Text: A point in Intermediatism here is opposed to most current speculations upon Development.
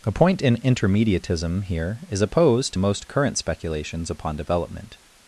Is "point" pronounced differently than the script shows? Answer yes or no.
no